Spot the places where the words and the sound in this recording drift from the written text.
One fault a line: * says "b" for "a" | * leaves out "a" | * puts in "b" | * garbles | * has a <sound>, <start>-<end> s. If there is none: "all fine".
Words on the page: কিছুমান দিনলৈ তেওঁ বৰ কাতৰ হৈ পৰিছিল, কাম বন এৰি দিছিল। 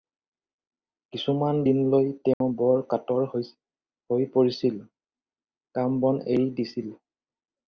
* has a dropout, 2.3-2.4 s